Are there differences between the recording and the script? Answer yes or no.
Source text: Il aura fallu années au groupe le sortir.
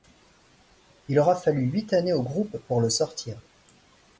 yes